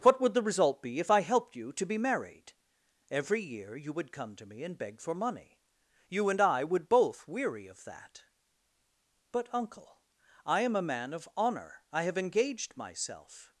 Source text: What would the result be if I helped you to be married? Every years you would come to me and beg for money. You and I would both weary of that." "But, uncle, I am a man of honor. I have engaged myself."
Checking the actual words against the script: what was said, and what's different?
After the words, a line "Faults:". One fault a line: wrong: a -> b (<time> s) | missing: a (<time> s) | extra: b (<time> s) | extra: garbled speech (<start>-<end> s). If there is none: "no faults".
What would the result be if I helped you to be married? Every year you would come to me and beg for money. You and I would both weary of that." "But, uncle, I am a man of honor. I have engaged myself."
Faults:
wrong: years -> year (3.4 s)